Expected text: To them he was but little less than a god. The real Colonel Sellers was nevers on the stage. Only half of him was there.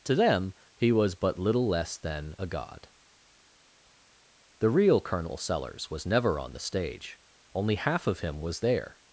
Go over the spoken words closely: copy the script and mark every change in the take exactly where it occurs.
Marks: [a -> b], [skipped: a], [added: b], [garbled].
To them he was but little less than a god. The real Colonel Sellers was [nevers -> never] on the stage. Only half of him was there.